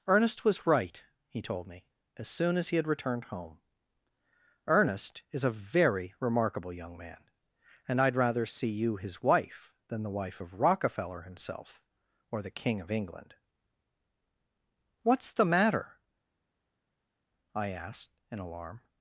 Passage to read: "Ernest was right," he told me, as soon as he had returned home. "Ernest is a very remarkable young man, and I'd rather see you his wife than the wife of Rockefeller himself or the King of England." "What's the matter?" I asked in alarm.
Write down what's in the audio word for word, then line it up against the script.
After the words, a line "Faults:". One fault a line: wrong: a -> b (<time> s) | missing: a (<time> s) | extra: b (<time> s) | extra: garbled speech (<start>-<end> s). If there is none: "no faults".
"Ernest was right," he told me, as soon as he had returned home. "Ernest is a very remarkable young man, and I'd rather see you his wife than the wife of Rockefeller himself or the King of England." "What's the matter?" I asked in alarm.
Faults:
no faults